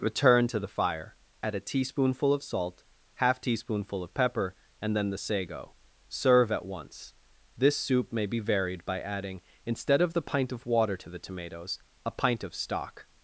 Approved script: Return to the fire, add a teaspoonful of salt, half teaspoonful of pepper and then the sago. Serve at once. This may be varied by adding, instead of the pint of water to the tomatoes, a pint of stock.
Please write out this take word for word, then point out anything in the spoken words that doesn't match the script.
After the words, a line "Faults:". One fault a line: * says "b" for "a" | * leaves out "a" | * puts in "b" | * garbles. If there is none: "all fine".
Return to the fire, add a teaspoonful of salt, half teaspoonful of pepper and then the sago. Serve at once. This soup may be varied by adding, instead of the pint of water to the tomatoes, a pint of stock.
Faults:
* puts in "soup"